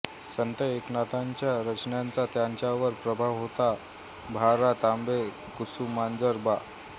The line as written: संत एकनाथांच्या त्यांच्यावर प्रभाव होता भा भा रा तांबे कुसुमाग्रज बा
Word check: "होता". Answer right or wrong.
right